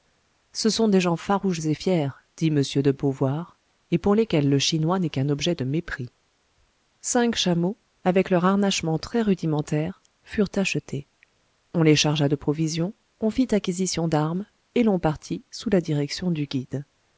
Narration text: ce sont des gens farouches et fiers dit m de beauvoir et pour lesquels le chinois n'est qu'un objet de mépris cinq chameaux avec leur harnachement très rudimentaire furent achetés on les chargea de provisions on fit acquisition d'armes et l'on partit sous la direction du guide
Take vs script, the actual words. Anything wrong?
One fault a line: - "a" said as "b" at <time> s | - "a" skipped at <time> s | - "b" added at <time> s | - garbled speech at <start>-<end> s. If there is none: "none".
none